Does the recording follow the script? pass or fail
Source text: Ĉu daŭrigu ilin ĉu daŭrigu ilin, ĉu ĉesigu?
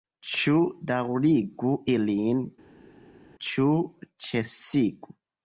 fail